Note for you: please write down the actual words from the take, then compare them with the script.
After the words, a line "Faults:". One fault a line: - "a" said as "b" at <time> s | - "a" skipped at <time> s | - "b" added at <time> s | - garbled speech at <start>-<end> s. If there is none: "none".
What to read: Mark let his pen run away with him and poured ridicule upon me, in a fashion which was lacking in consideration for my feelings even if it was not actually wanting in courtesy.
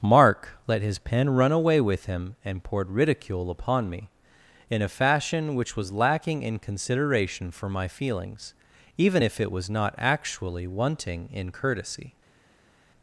Mark let his pen run away with him and poured ridicule upon me, in a fashion which was lacking in consideration for my feelings even if it was not actually wanting in courtesy.
Faults:
none